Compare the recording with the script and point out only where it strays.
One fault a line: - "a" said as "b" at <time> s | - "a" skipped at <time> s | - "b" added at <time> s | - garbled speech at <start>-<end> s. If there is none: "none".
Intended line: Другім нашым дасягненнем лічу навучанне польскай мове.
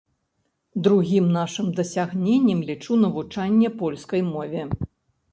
none